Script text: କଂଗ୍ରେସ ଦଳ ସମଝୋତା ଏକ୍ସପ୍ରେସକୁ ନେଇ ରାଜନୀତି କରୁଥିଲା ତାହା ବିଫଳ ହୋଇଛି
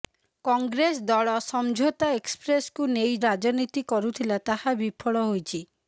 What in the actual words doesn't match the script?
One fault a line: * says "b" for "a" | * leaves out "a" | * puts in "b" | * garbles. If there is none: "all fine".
all fine